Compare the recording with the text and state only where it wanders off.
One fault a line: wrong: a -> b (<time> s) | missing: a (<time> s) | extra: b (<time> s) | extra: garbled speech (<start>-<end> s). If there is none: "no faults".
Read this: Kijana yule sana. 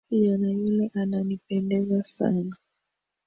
extra: ananipendeza (0.9 s)